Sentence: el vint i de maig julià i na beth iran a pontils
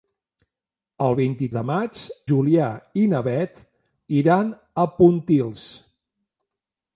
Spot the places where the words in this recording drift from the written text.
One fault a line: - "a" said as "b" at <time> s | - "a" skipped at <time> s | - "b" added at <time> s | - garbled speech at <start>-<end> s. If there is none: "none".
none